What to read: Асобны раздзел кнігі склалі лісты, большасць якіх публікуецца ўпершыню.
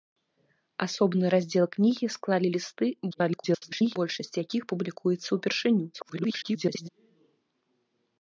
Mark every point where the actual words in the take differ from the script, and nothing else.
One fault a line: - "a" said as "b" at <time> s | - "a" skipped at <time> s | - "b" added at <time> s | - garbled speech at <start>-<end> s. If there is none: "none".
- garbled speech at 3.1-4.0 s
- garbled speech at 5.9-6.9 s